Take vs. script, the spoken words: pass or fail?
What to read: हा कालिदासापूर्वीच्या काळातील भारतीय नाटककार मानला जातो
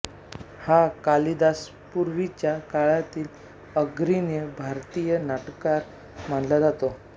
fail